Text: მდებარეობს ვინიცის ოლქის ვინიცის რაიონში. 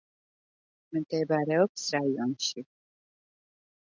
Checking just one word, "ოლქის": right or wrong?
wrong